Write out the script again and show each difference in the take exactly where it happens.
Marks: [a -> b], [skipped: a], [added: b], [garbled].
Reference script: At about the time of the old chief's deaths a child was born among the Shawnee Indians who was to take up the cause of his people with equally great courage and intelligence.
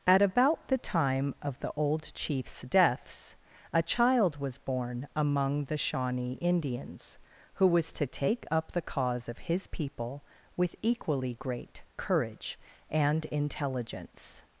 At about the time of the old chief's deaths a child was born among the Shawnee Indians who was to take up the cause of his people with equally great courage and intelligence.